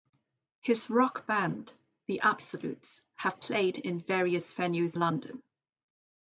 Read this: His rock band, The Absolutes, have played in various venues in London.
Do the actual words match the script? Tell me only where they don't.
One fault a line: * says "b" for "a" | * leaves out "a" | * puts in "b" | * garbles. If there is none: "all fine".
* leaves out "in"